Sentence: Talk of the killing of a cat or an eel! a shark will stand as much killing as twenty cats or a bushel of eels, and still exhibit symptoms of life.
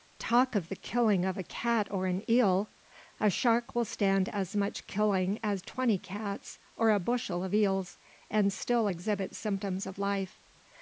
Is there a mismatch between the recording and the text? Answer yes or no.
no